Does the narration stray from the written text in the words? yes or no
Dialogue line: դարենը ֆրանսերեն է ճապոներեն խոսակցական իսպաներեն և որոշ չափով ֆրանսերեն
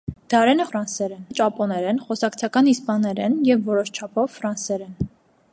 no